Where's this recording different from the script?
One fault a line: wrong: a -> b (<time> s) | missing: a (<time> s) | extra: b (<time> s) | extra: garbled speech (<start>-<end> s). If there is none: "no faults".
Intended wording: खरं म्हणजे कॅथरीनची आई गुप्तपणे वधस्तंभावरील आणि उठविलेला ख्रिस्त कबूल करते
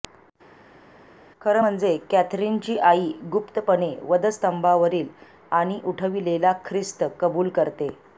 no faults